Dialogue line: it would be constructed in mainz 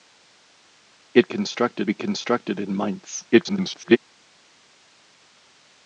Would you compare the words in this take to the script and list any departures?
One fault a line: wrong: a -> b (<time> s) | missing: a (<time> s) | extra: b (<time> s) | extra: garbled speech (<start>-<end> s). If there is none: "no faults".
wrong: would -> constructed (1.2 s)
extra: garbled speech (3.3-4.0 s)